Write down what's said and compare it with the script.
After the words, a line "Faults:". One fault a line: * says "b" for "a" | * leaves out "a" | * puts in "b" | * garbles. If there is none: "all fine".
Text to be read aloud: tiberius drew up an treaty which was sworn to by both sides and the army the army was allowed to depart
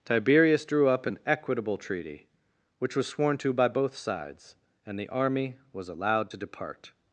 tiberius drew up an equitable treaty which was sworn to by both sides and the army was allowed to depart
Faults:
* puts in "equitable"
* leaves out "the army"